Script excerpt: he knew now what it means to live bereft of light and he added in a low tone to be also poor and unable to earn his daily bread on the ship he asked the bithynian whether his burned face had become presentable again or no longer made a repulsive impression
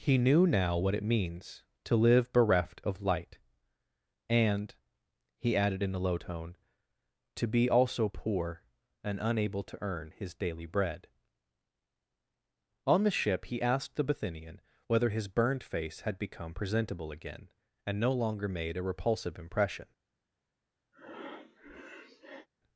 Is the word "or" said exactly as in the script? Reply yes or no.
no